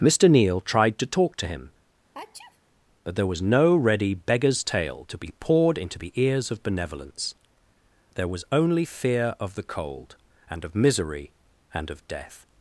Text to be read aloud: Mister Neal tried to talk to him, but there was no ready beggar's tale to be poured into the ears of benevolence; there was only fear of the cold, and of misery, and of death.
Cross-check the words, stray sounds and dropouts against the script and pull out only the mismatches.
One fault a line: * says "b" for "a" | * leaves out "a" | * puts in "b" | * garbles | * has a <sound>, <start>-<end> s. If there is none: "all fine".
* has a sneeze, 2.1-2.6 s